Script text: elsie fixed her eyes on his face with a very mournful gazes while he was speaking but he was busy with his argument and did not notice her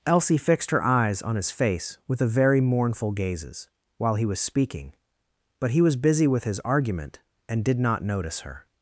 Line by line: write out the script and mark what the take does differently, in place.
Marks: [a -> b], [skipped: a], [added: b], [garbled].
elsie fixed her eyes on his face with a very mournful gazes while he was speaking but he was busy with his argument and did not notice her